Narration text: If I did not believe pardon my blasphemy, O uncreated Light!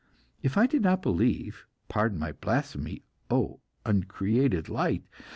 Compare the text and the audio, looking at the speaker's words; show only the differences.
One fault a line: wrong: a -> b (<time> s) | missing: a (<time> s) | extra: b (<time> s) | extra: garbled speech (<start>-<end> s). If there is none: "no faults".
no faults